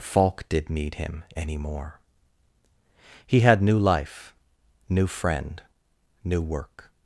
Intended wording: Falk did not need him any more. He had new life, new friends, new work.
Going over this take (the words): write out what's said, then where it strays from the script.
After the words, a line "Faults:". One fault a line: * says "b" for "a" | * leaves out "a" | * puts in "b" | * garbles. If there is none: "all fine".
Falk did need him any more. He had new life, new friend, new work.
Faults:
* leaves out "not"
* says "friend" for "friends"